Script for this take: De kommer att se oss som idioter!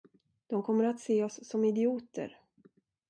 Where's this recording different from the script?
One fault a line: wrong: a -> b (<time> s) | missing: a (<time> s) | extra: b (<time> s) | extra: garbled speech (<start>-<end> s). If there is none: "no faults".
no faults